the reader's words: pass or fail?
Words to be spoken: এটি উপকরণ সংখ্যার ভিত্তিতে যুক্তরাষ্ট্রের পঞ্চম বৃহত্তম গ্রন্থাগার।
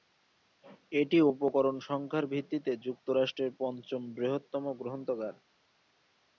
pass